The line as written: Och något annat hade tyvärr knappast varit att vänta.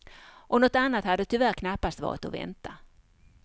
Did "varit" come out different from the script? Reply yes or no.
no